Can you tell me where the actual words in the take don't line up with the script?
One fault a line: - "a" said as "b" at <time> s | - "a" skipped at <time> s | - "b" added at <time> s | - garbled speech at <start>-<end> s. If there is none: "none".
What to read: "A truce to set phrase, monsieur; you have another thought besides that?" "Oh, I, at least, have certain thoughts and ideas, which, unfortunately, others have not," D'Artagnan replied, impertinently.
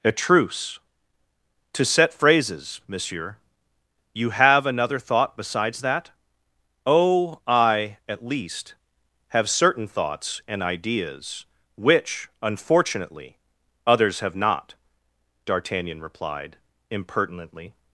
- "phrase" said as "phrases" at 2.1 s